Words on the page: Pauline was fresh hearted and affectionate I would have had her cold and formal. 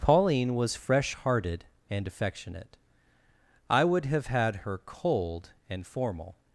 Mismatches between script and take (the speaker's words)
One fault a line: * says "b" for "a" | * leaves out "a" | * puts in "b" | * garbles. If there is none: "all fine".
all fine